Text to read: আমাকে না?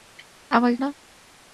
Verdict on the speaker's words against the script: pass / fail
pass